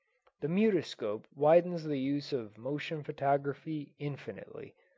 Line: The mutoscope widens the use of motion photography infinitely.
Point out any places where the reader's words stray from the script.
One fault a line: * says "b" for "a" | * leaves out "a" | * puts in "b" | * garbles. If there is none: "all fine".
all fine